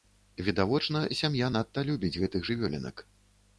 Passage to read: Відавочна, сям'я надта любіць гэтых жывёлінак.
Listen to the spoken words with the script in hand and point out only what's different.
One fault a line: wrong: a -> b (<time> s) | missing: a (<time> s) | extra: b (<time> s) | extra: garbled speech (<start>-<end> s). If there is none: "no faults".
no faults